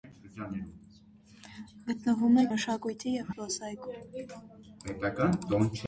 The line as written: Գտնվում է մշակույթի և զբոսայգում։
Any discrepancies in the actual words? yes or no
no